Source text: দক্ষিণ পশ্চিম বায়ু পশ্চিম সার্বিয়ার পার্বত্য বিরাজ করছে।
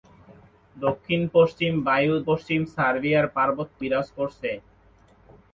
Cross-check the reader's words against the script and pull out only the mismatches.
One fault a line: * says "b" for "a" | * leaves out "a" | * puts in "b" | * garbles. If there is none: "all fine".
all fine